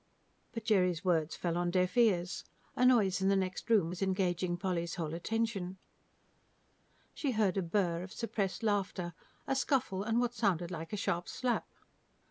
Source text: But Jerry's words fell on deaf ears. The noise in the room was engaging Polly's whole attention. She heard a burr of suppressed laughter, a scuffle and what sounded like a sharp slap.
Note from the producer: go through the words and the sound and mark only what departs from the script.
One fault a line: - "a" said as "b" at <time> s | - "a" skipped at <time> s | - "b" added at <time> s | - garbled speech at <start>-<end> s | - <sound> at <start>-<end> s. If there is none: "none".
- "The" said as "A" at 2.8 s
- "next" added at 3.4 s